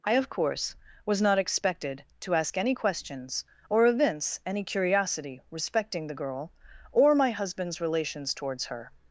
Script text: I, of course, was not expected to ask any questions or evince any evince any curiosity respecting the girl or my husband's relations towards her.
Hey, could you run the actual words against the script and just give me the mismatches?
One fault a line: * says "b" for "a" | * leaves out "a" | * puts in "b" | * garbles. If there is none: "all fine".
* leaves out "evince any"